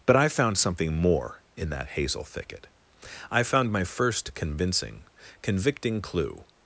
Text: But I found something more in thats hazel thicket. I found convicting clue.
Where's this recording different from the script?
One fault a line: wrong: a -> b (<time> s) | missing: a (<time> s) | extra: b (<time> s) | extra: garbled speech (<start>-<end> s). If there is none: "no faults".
wrong: thats -> that (1.7 s)
extra: my first convincing (3.7 s)